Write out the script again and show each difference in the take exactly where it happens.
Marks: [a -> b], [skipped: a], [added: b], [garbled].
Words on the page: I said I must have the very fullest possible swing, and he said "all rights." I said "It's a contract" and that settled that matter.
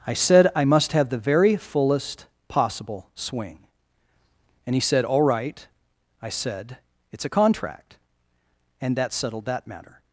I said I must have the very fullest possible swing, and he said "all [rights." -> right] I said "It's a contract" and that settled that matter.